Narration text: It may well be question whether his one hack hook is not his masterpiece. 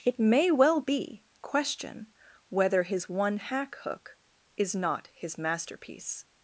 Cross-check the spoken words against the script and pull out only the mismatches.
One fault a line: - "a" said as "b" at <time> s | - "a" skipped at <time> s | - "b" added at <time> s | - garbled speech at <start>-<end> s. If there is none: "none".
none